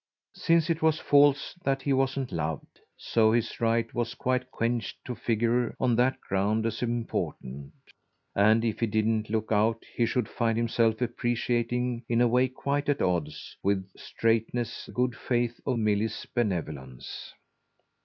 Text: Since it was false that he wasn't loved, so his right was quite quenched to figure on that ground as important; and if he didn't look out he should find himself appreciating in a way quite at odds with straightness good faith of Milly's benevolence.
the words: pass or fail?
pass